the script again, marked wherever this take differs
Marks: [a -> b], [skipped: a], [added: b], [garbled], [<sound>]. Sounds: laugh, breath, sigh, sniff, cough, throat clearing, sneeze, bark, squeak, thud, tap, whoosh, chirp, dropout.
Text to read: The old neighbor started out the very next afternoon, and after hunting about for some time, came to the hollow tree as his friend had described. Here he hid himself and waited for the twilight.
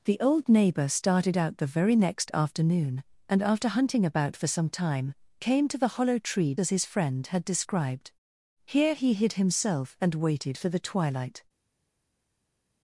The old neighbor started out the very next afternoon, and after hunting about for some time, came to the hollow tree as his friend had described. Here he hid himself and waited for the twilight.